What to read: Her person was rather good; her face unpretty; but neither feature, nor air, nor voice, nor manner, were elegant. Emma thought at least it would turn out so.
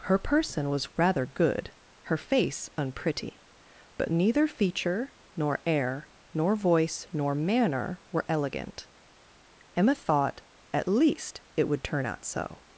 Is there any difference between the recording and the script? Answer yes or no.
no